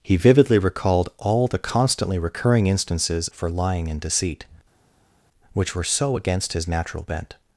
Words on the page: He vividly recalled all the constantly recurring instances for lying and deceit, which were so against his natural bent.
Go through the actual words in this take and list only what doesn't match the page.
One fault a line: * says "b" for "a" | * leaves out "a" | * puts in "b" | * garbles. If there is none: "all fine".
all fine